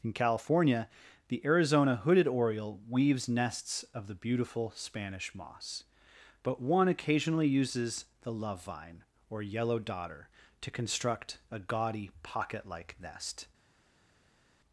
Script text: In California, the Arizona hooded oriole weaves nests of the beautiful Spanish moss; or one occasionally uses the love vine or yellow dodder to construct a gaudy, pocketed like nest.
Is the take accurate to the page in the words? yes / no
no